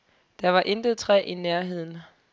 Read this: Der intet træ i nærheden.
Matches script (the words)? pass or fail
fail